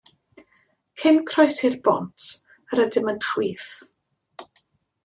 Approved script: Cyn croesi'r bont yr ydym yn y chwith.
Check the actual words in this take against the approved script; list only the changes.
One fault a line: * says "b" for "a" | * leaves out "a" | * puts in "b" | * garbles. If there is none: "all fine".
all fine